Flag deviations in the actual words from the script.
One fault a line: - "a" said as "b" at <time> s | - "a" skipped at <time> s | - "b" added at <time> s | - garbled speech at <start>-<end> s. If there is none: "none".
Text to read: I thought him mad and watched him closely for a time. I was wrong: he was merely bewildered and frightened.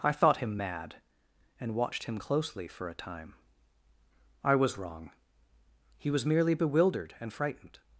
none